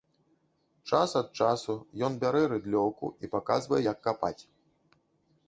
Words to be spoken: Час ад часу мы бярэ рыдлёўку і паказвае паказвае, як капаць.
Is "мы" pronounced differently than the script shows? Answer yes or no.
yes